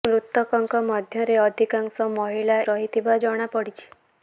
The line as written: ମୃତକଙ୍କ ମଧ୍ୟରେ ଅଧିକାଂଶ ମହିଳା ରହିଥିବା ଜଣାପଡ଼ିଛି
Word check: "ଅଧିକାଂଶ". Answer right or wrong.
right